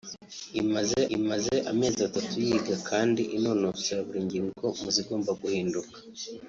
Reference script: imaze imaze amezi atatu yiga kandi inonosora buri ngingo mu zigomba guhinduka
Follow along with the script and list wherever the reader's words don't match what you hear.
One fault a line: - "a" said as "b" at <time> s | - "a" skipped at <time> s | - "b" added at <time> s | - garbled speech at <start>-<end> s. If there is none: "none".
none